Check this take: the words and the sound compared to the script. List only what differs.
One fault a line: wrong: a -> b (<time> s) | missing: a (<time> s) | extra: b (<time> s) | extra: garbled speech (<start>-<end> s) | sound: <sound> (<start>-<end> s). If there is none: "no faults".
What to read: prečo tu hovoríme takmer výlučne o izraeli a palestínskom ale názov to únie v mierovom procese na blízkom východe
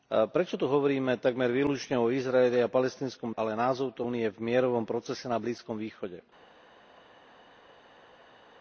no faults